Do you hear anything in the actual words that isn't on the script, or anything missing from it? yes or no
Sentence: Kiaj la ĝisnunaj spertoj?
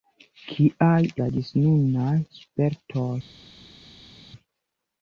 no